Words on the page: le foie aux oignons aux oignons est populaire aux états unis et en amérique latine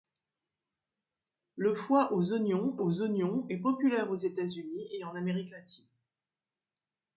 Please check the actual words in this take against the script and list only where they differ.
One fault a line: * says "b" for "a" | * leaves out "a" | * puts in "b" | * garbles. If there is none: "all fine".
all fine